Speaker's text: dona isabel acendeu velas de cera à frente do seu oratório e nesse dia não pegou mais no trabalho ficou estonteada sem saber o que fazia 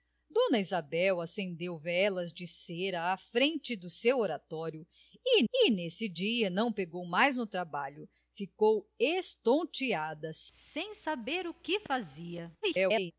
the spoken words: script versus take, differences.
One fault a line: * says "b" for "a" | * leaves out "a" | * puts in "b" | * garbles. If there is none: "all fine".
* puts in "e"
* garbles